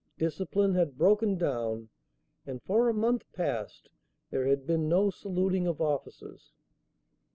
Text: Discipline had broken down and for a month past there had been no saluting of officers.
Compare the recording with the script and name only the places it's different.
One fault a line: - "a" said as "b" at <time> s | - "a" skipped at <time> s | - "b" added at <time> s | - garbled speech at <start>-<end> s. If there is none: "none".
none